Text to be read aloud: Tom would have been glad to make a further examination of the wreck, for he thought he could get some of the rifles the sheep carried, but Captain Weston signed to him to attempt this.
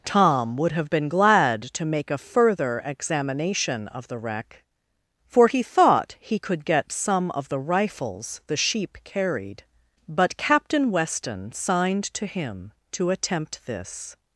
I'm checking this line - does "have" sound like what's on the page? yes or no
yes